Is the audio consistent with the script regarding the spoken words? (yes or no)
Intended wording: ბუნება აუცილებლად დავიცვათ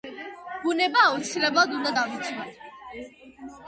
no